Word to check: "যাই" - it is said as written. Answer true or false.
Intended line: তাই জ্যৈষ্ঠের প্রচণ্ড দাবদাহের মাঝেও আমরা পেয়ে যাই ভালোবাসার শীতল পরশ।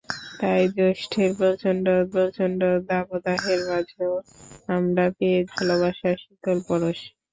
false